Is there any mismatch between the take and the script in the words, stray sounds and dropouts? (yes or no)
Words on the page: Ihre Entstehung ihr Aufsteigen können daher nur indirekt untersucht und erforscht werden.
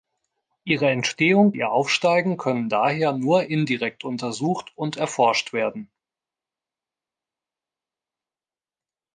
no